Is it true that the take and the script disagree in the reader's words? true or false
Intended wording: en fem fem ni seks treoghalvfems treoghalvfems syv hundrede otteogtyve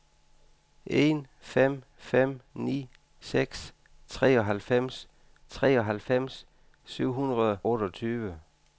false